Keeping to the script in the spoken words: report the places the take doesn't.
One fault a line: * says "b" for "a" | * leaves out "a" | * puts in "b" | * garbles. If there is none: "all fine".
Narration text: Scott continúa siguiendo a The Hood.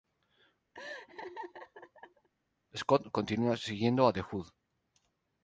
all fine